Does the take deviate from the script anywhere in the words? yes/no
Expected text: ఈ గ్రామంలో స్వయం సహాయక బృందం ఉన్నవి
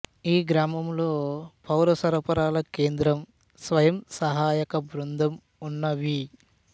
yes